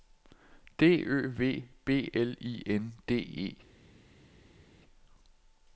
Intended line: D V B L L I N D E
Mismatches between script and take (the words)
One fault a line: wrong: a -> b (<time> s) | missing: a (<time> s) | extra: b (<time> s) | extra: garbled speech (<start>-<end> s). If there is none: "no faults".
extra: Ø (1.1 s)
missing: L (2.3 s)